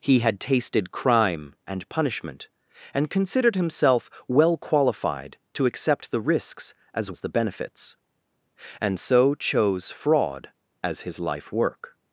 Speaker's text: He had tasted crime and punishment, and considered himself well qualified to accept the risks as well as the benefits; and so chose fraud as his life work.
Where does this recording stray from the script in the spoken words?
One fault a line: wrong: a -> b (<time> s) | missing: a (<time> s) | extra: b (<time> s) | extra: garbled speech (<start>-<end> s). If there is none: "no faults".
missing: well (7.1 s)